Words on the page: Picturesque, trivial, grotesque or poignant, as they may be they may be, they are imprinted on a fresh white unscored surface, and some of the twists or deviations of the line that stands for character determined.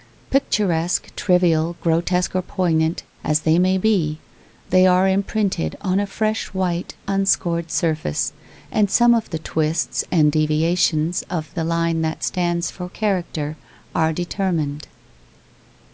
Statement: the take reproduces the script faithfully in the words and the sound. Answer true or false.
false